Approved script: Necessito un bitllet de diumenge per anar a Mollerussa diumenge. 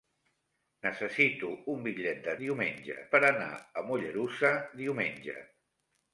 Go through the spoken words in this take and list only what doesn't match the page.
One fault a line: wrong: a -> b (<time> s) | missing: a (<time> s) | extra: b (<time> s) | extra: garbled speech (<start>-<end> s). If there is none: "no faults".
no faults